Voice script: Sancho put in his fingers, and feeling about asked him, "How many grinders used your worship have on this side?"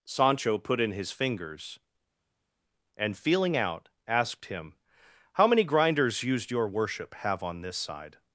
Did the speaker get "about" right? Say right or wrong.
wrong